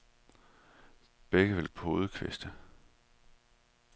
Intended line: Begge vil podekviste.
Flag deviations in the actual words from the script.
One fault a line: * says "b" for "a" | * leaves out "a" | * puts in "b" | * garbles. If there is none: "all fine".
all fine